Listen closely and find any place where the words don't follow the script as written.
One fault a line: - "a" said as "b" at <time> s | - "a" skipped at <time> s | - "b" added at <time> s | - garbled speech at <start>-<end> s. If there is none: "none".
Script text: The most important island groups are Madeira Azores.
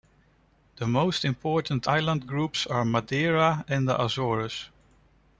- "and the" added at 3.7 s